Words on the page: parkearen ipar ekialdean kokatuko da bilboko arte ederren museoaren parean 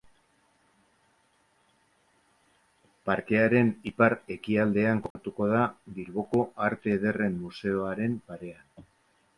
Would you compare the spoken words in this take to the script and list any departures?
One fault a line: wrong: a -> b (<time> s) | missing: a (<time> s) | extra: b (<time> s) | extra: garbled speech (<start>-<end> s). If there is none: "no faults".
no faults